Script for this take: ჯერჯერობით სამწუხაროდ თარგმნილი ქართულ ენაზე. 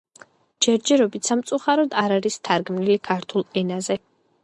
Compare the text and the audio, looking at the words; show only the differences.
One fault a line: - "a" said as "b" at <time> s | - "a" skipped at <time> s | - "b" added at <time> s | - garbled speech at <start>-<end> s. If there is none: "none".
- "არ არის" added at 2.0 s